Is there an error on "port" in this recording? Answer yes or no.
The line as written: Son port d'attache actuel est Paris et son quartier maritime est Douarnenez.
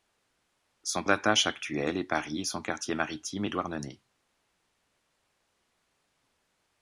yes